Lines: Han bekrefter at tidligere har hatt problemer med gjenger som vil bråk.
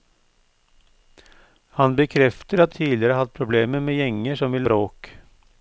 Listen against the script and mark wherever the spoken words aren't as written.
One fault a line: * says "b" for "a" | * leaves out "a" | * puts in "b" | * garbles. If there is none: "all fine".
all fine